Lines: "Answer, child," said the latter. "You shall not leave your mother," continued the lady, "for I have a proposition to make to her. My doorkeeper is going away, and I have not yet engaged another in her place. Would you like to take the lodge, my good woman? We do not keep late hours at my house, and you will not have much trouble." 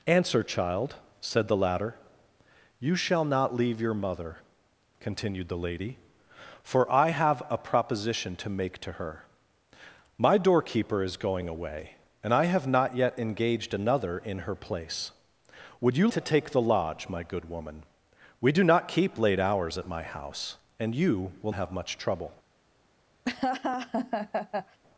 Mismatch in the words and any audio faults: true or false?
true